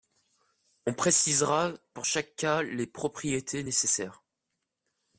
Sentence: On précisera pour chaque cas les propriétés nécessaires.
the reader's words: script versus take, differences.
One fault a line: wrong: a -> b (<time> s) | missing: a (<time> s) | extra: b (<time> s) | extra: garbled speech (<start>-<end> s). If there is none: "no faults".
no faults